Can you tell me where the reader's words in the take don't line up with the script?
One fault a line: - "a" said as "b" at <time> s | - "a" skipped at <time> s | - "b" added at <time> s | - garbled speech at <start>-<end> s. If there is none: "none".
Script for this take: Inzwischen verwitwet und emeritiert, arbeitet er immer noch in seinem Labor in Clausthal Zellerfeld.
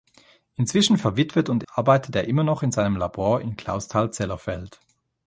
- "emeritiert" skipped at 1.6 s